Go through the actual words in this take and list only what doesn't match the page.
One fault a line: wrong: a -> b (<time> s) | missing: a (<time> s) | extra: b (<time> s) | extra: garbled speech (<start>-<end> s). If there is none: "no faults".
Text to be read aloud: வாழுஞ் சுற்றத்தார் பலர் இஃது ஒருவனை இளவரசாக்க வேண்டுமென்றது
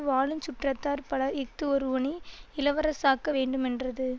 no faults